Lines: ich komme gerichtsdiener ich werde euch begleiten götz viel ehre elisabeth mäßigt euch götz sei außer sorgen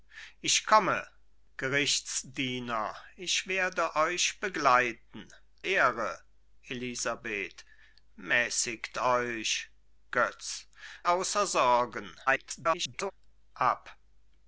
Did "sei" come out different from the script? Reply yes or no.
yes